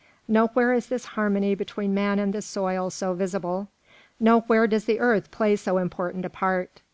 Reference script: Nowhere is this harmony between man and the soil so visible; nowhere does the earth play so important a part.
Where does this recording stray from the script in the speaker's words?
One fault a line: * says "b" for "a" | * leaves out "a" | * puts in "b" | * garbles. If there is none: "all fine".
all fine